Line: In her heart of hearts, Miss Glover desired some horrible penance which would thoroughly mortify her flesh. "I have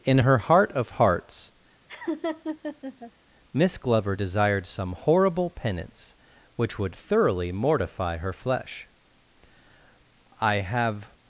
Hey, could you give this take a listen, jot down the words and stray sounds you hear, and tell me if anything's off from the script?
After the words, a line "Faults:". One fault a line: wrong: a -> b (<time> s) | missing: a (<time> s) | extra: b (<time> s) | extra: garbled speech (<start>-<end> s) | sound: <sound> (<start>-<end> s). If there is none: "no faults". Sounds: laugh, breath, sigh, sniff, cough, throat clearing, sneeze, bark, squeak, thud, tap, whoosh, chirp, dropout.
In her heart of hearts, Miss Glover desired some horrible penance which would thoroughly mortify her flesh. "I have
Faults:
sound: laugh (1.9-3.1 s)